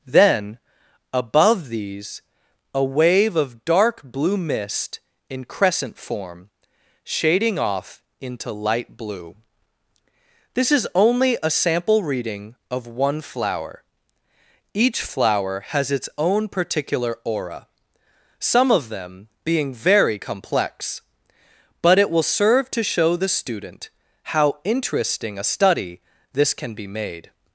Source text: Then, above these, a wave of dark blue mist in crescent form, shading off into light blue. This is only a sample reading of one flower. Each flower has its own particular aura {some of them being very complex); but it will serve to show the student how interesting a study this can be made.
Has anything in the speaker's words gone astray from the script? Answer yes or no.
no